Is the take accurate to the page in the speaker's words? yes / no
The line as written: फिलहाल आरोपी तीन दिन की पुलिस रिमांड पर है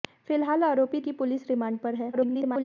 no